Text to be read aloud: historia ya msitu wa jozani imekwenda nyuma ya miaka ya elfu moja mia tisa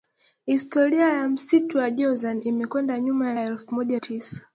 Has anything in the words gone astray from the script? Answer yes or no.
yes